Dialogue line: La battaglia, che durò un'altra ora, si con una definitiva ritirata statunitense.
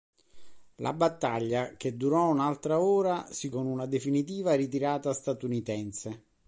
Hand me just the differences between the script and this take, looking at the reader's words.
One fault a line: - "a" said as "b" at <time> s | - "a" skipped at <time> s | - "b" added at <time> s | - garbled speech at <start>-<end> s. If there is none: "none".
none